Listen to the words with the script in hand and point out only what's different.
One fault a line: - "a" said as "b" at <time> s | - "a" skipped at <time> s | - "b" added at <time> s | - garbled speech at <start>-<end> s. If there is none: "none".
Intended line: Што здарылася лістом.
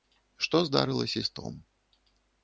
none